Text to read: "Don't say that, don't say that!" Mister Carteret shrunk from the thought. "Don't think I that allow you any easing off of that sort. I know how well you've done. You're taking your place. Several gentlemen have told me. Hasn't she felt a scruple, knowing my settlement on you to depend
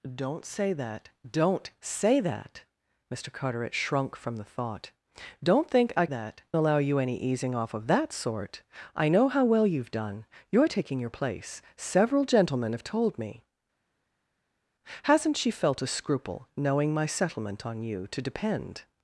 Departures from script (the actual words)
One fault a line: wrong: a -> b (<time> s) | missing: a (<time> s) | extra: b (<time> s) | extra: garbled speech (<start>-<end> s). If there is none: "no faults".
no faults